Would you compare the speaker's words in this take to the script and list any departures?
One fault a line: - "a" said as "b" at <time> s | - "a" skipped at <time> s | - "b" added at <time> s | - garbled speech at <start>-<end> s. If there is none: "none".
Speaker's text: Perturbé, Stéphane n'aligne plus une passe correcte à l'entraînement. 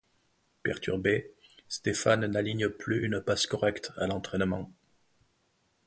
none